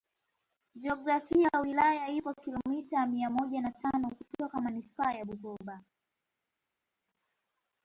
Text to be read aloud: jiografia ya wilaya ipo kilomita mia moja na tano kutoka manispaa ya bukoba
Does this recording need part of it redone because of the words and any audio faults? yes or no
no